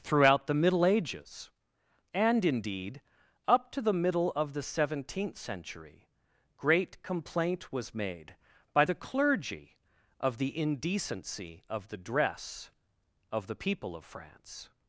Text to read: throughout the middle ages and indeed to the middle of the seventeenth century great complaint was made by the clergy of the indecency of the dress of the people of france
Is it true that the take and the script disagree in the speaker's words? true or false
true